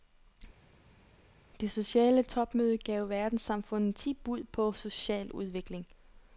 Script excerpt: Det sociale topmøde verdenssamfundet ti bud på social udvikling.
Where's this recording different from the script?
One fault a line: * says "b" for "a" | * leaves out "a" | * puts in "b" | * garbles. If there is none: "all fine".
* puts in "gav"